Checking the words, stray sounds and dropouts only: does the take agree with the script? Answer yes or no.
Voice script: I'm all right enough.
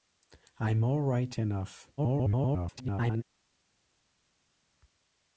no